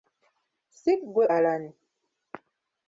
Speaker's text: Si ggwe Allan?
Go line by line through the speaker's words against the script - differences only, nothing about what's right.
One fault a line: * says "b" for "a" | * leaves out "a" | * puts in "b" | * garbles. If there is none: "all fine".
all fine